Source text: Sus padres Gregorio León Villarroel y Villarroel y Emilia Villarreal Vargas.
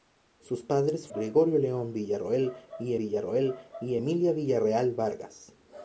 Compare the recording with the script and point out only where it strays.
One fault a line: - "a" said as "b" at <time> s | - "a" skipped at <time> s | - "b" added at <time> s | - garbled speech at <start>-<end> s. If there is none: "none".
none